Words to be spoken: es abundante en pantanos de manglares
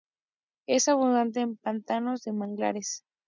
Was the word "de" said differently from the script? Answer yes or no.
no